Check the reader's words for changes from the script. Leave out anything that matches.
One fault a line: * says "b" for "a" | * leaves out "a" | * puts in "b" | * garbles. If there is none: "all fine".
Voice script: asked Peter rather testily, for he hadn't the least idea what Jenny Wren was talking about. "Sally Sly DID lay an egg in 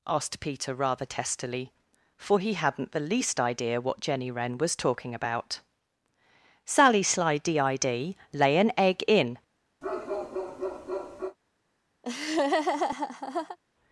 all fine